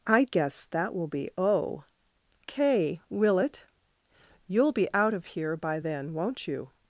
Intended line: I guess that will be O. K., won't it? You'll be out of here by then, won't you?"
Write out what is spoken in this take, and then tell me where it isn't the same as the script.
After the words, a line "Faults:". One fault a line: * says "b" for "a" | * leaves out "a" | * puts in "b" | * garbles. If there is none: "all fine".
I guess that will be O. K., will it? You'll be out of here by then, won't you?"
Faults:
* says "will" for "won't"